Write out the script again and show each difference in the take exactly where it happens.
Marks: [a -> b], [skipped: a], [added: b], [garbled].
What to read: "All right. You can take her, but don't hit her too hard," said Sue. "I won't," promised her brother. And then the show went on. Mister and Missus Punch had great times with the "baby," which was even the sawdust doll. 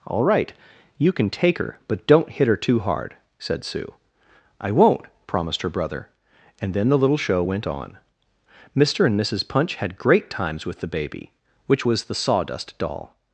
"All right. You can take her, but don't hit her too hard," said Sue. "I won't," promised her brother. And then the [added: little] show went on. Mister and Missus Punch had great times with the "baby," which was [skipped: even] the sawdust doll.